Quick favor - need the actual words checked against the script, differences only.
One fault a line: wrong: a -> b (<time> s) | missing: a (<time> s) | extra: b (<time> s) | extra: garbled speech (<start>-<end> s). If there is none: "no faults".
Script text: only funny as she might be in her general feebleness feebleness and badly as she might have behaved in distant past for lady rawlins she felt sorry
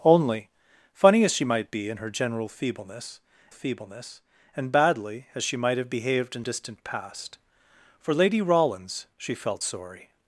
no faults